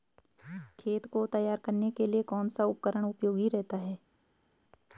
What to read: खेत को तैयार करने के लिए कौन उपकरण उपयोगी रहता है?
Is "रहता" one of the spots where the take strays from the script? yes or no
no